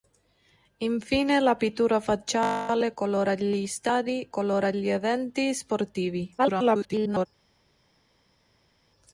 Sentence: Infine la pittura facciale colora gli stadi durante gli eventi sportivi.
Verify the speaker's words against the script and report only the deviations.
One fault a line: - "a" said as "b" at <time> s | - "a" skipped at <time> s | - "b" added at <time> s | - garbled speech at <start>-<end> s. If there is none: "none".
- "durante" said as "colora" at 4.3 s
- garbled speech at 6.4-7.3 s